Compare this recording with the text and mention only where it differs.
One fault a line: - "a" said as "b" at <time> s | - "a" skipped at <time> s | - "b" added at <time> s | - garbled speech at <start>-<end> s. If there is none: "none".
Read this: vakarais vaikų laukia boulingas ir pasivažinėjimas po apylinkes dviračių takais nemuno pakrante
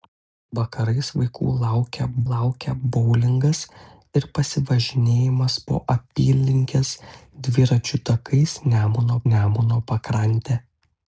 - "laukia" added at 2.3 s
- "nemuno" added at 9.3 s